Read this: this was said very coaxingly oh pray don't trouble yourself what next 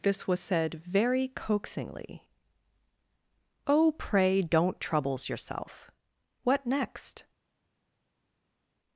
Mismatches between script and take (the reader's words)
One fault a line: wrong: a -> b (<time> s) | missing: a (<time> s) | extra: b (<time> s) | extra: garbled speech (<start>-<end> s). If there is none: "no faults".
wrong: trouble -> troubles (4.8 s)